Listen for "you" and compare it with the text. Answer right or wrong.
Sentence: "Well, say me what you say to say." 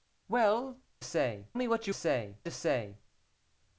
right